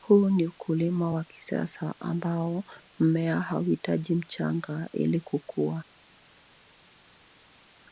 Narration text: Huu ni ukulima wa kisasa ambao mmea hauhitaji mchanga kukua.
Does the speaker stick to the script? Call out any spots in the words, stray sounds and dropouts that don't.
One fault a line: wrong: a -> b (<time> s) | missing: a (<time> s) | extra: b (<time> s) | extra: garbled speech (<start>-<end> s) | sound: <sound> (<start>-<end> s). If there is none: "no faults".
extra: ili (4.9 s)